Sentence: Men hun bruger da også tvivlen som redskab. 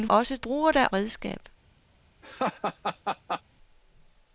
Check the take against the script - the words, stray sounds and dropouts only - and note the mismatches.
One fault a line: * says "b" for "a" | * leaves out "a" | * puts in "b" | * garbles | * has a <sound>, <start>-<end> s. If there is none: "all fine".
* says "også" for "hun"
* leaves out "også tvivlen som"
* has a laugh, 2.2-3.4 s